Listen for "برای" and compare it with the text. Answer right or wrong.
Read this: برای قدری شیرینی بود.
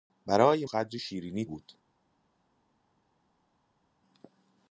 right